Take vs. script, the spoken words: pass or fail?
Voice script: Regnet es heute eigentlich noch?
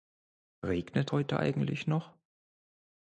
fail